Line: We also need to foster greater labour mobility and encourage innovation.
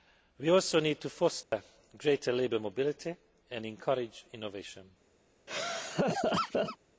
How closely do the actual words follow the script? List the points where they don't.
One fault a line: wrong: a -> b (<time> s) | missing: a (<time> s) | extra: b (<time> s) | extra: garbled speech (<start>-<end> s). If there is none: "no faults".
no faults